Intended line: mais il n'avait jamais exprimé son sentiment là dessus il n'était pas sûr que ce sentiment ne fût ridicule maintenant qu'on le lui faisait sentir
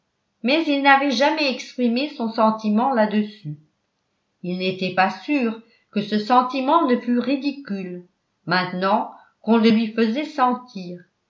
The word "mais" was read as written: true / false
true